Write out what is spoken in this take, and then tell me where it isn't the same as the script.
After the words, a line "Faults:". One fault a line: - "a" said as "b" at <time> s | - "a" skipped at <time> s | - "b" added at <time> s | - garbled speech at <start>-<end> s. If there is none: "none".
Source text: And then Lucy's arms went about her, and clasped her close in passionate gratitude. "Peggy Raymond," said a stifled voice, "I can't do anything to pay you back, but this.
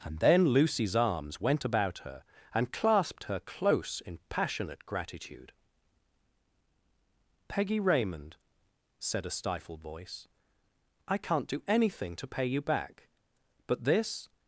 And then Lucy's arms went about her, and clasped her close in passionate gratitude. "Peggy Raymond," said a stifled voice, "I can't do anything to pay you back, but this.
Faults:
none